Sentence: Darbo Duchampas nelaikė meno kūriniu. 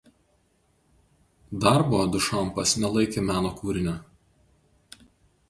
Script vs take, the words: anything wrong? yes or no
no